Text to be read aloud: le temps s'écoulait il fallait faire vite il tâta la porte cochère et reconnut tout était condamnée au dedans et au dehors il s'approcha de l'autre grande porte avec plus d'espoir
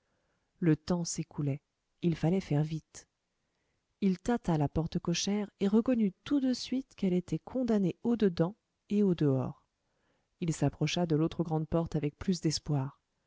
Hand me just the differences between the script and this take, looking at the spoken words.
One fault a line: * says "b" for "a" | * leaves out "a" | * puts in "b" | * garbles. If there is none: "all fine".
* puts in "de suite quelle"